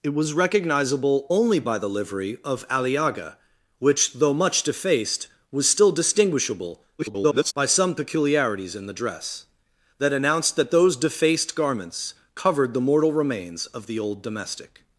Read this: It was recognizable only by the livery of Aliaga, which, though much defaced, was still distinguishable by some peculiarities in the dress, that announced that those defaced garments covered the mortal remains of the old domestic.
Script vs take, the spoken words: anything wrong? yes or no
yes